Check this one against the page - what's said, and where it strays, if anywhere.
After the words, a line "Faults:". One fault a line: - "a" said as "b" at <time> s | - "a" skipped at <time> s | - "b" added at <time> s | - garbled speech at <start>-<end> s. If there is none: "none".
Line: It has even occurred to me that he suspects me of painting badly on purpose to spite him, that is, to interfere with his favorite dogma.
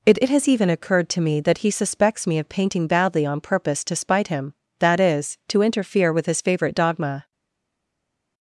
It it has even occurred to me that he suspects me of painting badly on purpose to spite him, that is, to interfere with his favorite dogma.
Faults:
- "it" added at 0.2 s